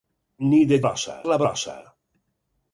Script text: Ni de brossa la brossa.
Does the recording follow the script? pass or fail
pass